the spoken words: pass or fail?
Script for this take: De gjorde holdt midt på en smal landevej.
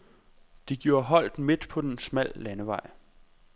pass